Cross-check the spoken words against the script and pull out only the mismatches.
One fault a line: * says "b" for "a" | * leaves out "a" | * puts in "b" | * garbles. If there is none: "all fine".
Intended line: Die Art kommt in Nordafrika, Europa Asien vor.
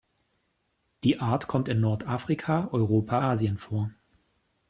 all fine